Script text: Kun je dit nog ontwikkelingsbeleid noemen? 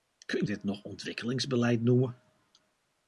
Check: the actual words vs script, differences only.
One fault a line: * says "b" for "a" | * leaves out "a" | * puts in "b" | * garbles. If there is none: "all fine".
* leaves out "je"